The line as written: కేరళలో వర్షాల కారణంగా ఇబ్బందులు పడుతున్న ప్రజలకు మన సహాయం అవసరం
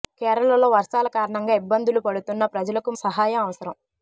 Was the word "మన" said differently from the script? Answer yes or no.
yes